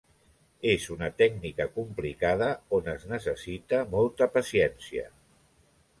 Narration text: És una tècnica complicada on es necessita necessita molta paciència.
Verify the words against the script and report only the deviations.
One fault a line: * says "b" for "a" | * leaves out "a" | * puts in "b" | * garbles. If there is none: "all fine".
* leaves out "necessita"